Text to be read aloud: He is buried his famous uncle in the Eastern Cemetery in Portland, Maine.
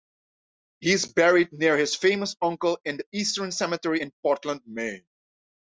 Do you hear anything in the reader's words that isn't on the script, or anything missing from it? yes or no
yes